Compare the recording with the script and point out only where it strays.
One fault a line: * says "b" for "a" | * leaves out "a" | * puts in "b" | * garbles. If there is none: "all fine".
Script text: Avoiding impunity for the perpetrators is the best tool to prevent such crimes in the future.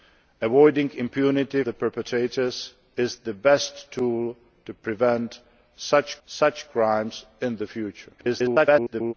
* leaves out "for"
* puts in "such"
* garbles